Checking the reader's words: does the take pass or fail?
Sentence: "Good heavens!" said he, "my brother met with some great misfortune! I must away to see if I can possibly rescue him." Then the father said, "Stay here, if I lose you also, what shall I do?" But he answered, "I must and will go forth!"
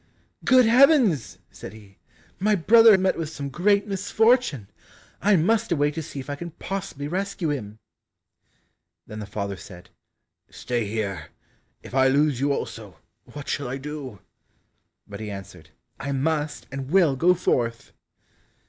pass